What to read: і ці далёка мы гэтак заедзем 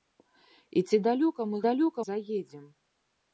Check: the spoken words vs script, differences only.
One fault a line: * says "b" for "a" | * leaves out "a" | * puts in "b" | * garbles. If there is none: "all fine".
* says "далёка" for "гэтак"